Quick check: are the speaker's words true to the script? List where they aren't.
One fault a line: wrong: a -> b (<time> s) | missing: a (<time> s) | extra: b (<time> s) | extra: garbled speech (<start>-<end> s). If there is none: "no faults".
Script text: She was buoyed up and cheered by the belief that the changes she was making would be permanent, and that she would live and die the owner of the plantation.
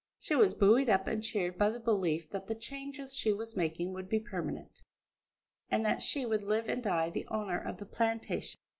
no faults